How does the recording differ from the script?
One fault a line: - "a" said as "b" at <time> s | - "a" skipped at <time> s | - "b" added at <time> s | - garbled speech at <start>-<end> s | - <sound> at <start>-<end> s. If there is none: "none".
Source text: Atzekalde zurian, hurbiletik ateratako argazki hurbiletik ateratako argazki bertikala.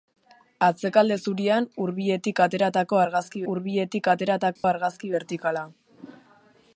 - dropout at 4.6-4.6 s